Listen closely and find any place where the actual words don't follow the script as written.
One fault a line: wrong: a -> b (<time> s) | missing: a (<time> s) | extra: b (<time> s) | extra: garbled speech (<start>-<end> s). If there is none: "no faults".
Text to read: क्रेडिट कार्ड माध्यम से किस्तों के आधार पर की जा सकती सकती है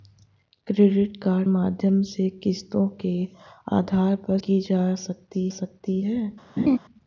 no faults